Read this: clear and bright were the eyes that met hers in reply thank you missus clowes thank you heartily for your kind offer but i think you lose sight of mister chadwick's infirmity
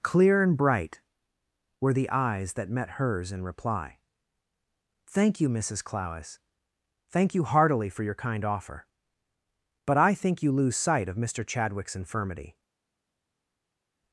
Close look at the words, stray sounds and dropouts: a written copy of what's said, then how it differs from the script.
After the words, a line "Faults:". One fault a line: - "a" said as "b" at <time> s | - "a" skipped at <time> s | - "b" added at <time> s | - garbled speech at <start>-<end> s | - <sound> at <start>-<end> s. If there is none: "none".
clear and bright were the eyes that met hers in reply thank you missus clowes thank you heartily for your kind offer but i think you lose sight of mister chadwick's infirmity
Faults:
none